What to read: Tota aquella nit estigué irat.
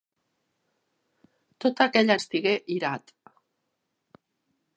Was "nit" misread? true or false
true